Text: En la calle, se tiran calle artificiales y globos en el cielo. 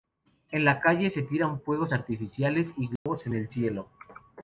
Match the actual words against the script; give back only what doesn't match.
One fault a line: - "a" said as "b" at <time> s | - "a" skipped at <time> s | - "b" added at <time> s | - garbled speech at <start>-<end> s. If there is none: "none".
- "calle" said as "fuegos" at 1.6 s